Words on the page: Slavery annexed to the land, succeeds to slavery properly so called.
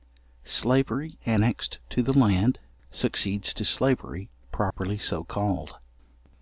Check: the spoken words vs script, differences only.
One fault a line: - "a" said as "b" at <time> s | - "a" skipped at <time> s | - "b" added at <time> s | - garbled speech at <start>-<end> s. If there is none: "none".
none